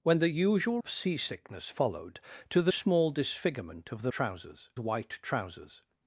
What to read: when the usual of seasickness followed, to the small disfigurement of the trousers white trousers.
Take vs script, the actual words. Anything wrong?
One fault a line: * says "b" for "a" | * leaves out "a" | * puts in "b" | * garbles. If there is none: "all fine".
all fine